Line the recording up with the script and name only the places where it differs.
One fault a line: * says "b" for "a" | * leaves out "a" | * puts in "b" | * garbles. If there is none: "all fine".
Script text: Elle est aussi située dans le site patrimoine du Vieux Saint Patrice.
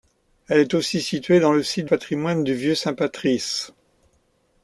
all fine